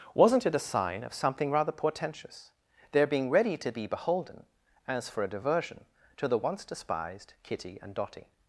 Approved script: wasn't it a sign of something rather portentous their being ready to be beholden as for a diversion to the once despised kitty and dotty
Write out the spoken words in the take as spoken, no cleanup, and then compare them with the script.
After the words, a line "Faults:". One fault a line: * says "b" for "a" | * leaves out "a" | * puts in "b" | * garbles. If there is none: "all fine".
wasn't it a sign of something rather portentous their being ready to be beholden as for a diversion to the once despised kitty and dotty
Faults:
all fine